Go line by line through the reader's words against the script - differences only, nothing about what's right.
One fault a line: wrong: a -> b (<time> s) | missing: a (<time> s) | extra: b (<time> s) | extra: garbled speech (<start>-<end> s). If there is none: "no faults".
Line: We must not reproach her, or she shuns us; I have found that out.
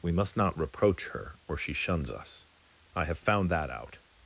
no faults